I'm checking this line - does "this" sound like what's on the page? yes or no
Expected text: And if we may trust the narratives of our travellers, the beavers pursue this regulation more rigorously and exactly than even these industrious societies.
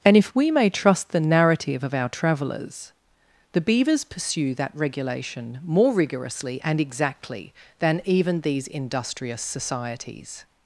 no